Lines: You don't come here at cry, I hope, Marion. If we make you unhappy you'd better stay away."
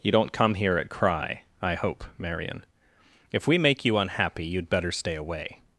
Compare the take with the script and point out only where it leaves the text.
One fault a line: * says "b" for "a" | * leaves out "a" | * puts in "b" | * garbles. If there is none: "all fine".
all fine